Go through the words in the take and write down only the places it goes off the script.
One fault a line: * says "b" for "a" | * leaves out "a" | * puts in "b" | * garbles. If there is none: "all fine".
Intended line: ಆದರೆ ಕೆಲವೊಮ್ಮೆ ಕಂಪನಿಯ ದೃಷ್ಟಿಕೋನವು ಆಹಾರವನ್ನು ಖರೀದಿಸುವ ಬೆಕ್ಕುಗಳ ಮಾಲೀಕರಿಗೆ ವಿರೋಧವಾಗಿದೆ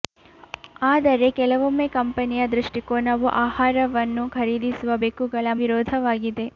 * leaves out "ಮಾಲೀಕರಿಗೆ"